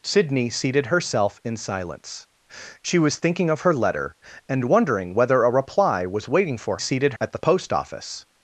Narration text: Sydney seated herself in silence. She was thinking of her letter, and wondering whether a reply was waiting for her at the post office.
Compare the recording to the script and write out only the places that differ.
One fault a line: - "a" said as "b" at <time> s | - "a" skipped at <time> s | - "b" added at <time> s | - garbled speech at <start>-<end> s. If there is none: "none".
- "her" said as "seated" at 6.8 s